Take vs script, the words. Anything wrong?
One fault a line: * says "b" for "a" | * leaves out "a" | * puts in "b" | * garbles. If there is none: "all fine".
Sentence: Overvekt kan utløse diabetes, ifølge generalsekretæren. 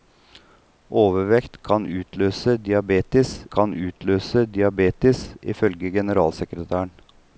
* puts in "kan utløse diabetes"